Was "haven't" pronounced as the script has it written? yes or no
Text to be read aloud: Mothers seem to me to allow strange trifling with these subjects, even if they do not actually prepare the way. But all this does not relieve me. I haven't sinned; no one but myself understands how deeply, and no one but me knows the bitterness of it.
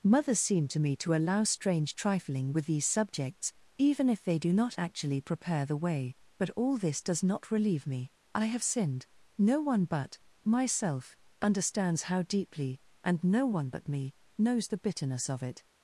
no